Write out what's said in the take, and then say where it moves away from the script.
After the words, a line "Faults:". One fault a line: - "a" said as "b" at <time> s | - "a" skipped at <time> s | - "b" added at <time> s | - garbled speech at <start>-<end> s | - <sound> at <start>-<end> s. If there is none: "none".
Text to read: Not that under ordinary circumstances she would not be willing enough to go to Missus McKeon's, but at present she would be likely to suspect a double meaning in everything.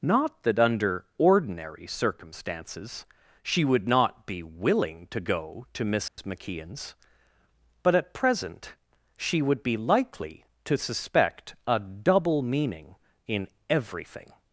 Not that under ordinary circumstances she would not be willing to go to Missus McKeon's, but at present she would be likely to suspect a double meaning in everything.
Faults:
- "enough" skipped at 5.1 s
- dropout at 6.1-6.2 s